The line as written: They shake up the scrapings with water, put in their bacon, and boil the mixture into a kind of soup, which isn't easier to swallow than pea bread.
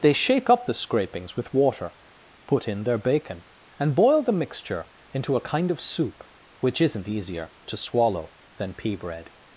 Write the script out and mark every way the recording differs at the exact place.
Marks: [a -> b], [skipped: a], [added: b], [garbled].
They shake up the scrapings with water, put in their bacon, and boil the mixture into a kind of soup, which isn't easier to swallow than pea bread.